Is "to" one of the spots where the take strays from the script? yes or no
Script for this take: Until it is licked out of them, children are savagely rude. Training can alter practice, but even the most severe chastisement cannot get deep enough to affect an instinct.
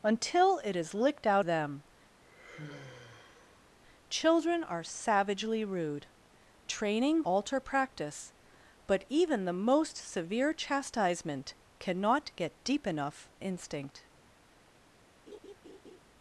yes